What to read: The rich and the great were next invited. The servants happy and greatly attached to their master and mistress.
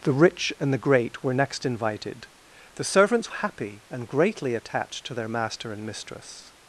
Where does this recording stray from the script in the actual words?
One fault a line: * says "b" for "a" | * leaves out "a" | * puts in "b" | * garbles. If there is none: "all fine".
all fine